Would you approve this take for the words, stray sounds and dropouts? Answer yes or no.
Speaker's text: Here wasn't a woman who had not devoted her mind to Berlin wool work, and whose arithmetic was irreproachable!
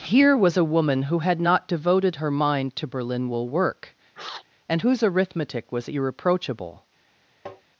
no